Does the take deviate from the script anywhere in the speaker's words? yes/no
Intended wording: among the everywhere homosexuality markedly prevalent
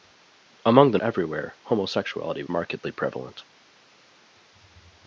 no